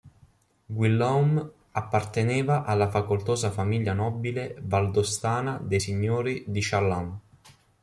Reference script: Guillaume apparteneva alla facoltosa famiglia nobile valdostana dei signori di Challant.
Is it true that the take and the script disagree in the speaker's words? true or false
false